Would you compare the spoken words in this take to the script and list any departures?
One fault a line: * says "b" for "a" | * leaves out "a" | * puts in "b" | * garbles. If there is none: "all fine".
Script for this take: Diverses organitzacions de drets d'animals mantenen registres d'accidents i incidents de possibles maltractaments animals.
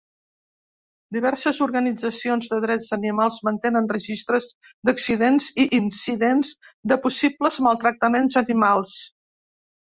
all fine